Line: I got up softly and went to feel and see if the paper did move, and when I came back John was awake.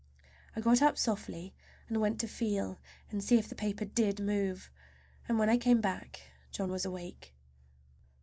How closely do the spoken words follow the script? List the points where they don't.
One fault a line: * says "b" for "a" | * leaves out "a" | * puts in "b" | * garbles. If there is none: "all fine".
all fine